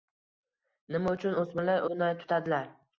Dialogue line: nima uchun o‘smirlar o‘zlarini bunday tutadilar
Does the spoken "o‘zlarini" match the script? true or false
false